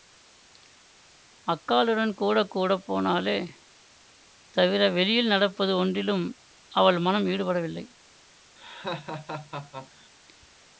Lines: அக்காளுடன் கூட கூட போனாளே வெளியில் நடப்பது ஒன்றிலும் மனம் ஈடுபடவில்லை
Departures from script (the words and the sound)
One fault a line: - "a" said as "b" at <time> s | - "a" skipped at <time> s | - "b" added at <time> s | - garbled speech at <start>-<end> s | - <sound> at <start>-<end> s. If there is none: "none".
- "தவிர" added at 4.5 s
- "அவள்" added at 6.7 s
- laugh at 8.6-10.1 s